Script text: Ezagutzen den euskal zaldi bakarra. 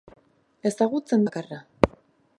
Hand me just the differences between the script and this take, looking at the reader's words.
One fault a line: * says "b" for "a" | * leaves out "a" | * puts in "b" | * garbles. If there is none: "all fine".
* leaves out "den euskal zaldi"